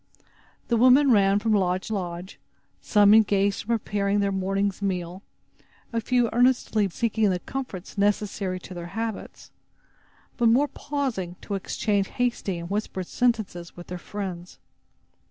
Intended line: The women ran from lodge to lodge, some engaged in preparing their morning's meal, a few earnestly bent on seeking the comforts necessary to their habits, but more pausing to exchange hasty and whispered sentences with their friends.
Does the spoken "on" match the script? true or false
false